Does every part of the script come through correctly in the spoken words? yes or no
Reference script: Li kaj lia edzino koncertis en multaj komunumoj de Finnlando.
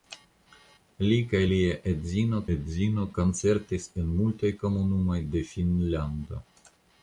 no